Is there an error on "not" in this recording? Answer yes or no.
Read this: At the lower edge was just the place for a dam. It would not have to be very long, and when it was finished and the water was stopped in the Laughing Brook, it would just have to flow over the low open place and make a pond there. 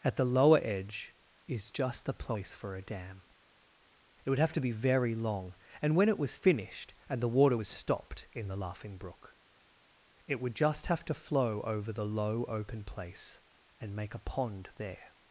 yes